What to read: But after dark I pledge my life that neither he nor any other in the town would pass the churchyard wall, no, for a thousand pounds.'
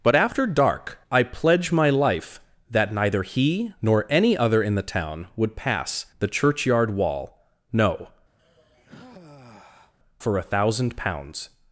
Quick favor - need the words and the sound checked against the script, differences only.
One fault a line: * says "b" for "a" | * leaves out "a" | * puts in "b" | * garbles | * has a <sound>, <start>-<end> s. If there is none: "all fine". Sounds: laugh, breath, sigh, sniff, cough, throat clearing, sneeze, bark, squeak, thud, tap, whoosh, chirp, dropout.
* has a sigh, 8.4-9.9 s